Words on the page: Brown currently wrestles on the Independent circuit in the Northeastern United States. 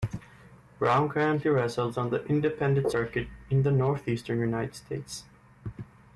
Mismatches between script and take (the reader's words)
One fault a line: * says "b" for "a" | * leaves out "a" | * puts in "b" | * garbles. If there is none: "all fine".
all fine